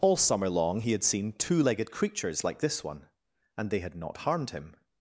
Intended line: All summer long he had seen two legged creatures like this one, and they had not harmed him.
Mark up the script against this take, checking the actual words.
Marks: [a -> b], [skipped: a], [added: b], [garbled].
All summer long he had seen two legged creatures like this one, and they had not harmed him.